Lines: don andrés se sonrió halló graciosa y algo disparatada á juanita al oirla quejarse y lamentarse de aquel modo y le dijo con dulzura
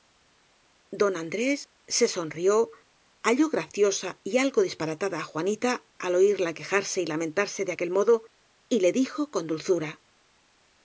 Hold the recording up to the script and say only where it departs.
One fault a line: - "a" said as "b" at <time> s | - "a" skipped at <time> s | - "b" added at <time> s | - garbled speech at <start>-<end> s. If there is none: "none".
none